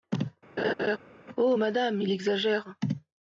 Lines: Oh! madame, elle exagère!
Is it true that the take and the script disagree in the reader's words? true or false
true